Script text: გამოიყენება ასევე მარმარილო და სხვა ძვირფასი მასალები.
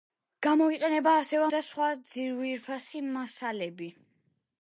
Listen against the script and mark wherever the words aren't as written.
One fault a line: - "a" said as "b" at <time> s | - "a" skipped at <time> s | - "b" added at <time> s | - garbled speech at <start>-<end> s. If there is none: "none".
- "მარმარილო" skipped at 1.5 s